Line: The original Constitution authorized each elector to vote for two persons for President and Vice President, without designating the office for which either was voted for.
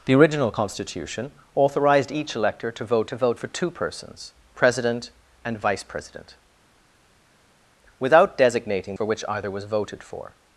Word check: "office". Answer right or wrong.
wrong